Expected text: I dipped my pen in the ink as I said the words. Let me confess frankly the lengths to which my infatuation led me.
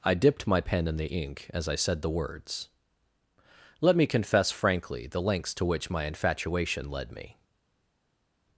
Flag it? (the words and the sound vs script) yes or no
no